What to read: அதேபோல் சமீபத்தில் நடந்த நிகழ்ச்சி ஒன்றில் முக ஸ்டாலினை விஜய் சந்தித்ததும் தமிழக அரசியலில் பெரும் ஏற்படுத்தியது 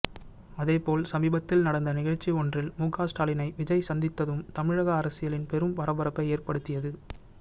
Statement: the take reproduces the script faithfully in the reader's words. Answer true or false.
false